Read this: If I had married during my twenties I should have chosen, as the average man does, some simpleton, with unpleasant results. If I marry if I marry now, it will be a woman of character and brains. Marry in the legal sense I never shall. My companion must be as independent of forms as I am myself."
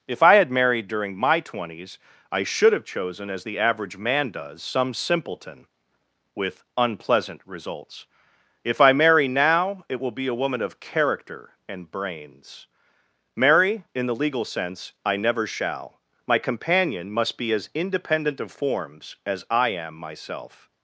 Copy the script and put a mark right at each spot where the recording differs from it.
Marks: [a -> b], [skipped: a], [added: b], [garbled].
If I had married during my twenties I should have chosen, as the average man does, some simpleton, with unpleasant results. If I marry [skipped: if I marry] now, it will be a woman of character and brains. Marry in the legal sense I never shall. My companion must be as independent of forms as I am myself."